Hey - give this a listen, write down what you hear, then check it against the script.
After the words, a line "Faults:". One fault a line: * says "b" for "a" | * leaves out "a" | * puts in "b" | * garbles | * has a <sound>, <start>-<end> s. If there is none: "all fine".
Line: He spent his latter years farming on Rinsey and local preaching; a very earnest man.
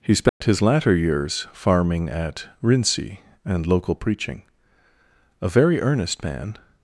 He spent his latter years farming at Rinsey and local preaching; a very earnest man.
Faults:
* has a dropout, 0.3-0.4 s
* says "at" for "on"